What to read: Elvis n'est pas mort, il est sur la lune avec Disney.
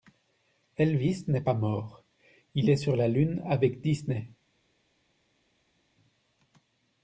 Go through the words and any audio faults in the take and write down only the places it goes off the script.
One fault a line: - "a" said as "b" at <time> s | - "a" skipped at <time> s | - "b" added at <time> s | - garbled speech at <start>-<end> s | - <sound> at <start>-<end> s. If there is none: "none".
none